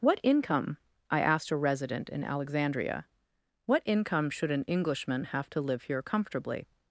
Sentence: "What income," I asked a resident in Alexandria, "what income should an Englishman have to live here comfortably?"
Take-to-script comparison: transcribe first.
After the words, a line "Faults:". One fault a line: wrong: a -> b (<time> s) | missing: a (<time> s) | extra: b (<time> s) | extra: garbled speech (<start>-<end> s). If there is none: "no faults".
"What income," I asked a resident in Alexandria, "what income should an Englishman have to live here comfortably?"
Faults:
no faults